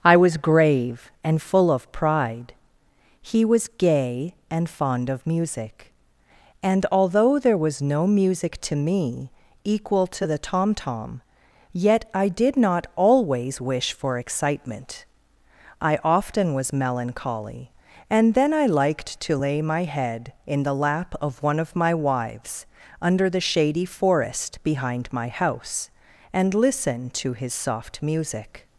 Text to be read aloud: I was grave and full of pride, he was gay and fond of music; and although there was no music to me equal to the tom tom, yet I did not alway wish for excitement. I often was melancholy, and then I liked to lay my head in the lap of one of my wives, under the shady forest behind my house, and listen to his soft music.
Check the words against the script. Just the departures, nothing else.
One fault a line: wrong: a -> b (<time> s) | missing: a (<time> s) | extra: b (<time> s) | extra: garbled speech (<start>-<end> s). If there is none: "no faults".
wrong: alway -> always (12.9 s)